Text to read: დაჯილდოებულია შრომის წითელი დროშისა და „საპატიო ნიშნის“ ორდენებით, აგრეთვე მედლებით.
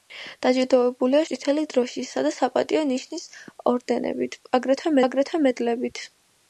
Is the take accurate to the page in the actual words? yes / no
no